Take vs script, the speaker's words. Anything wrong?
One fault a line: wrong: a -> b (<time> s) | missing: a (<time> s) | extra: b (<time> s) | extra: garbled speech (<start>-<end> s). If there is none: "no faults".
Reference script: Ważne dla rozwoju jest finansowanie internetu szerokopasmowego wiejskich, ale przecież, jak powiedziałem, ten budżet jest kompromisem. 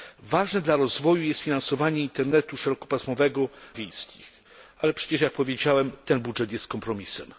no faults